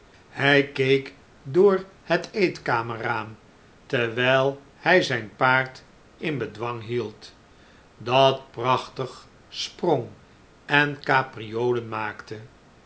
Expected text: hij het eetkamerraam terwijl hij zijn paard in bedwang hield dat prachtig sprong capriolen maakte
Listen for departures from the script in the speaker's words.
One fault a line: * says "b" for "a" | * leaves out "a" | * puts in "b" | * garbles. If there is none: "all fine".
* puts in "keek door"
* puts in "en"